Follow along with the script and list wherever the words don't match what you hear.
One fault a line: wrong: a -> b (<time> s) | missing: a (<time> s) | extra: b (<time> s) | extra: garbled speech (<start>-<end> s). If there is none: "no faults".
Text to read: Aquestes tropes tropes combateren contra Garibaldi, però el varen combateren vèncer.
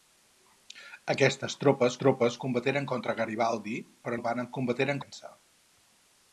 no faults